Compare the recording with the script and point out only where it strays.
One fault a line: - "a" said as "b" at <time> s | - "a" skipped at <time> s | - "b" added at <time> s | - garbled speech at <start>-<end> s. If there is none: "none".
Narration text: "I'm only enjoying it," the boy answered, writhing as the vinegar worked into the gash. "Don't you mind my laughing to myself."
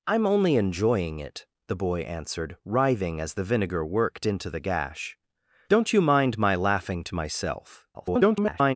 - garbled speech at 7.9-8.8 s